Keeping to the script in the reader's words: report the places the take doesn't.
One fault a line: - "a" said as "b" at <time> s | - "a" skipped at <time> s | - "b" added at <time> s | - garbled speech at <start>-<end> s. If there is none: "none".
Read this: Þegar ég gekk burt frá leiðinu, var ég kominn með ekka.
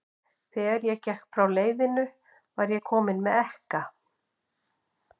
- "burt" skipped at 1.3 s